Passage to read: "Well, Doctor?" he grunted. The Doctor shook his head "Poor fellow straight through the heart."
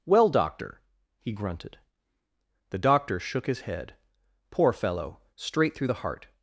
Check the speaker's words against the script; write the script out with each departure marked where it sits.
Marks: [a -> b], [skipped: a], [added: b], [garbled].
"Well, Doctor?" he grunted. The Doctor shook his head "Poor fellow straight through the heart."